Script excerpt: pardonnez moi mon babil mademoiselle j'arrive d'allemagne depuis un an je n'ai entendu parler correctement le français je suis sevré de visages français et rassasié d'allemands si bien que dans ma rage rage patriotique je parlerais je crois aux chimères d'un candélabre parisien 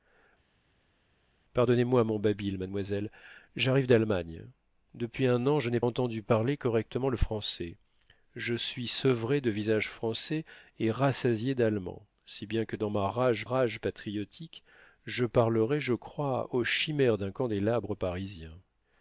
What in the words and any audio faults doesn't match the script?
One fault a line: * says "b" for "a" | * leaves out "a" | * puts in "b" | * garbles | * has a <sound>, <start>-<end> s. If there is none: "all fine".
all fine